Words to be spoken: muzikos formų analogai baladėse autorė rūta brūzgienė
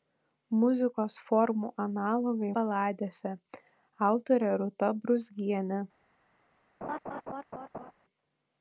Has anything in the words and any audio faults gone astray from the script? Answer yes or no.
yes